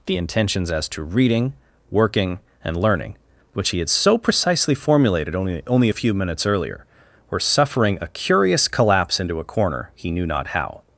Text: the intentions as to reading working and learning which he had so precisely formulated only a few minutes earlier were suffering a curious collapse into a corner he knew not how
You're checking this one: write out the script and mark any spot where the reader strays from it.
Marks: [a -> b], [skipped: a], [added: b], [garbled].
the intentions as to reading working and learning which he had so precisely formulated only [added: only] a few minutes earlier were suffering a curious collapse into a corner he knew not how